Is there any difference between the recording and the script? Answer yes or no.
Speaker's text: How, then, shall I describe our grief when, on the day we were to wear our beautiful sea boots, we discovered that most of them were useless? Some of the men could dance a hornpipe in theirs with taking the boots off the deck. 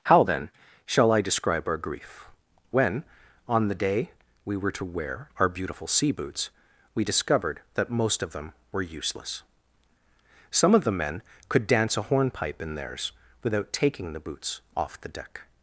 yes